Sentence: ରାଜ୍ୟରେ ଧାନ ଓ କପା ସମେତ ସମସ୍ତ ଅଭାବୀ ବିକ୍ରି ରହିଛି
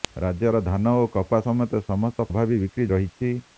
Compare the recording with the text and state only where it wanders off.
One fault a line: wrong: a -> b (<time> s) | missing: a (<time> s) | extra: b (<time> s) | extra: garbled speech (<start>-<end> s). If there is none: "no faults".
no faults